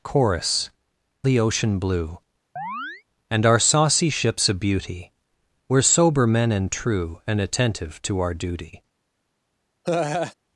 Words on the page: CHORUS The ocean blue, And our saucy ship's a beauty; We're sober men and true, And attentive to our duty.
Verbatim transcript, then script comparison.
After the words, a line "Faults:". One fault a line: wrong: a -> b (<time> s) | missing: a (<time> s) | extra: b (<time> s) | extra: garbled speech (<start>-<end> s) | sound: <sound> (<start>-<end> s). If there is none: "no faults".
CHORUS The ocean blue, And our saucy ship's a beauty; We're sober men and true, And attentive to our duty.
Faults:
sound: chirp (2.6-3.0 s)
sound: laugh (9.8-10.3 s)